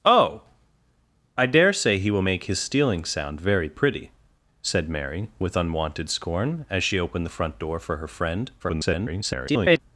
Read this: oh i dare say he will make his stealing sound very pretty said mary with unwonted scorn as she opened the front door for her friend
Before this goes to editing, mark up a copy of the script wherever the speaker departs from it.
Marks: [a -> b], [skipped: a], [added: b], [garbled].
oh i dare say he will make his stealing sound very pretty said mary with unwonted scorn as she opened the front door for her friend [garbled]